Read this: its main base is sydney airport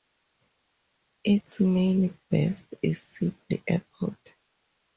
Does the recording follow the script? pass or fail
pass